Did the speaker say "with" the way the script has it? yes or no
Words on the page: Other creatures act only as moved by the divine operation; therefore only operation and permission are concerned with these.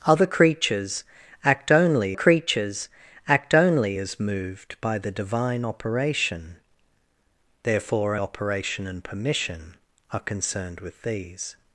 yes